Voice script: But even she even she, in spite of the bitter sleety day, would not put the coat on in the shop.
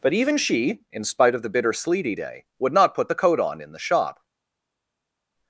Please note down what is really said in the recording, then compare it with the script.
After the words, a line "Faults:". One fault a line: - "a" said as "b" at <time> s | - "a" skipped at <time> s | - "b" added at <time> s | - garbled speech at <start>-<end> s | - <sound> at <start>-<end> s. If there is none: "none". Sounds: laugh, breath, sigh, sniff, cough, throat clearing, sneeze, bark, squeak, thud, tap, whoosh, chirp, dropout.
But even she, in spite of the bitter sleety day, would not put the coat on in the shop.
Faults:
- "even she" skipped at 0.8 s